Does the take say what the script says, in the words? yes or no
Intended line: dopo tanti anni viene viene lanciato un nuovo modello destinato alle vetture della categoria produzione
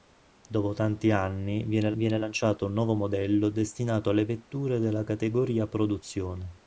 yes